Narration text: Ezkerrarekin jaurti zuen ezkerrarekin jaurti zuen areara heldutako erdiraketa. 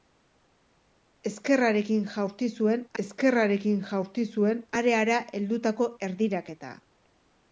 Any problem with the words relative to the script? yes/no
no